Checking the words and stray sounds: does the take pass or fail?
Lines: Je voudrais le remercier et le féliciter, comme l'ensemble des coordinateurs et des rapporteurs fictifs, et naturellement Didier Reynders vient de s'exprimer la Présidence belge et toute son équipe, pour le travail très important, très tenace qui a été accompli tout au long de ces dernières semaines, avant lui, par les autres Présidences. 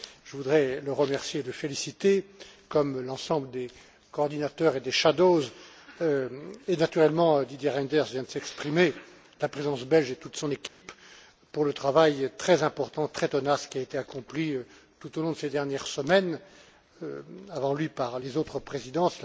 fail